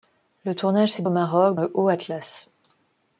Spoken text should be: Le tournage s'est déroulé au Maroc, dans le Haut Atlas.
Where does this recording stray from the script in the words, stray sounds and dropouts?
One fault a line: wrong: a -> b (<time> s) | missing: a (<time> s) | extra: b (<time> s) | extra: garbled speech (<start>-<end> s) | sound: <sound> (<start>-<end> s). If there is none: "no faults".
missing: déroulé (1.0 s)
missing: dans (1.6 s)